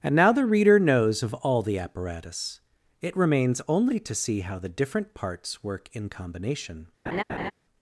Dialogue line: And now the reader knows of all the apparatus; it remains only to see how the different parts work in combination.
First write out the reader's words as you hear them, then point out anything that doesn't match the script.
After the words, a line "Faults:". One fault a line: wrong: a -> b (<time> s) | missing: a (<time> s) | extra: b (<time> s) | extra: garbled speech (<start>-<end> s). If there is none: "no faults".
And now the reader knows of all the apparatus; it remains only to see how the different parts work in combination.
Faults:
no faults